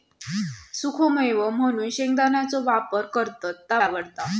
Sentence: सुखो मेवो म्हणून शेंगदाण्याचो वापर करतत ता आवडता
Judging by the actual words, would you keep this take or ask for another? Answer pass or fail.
pass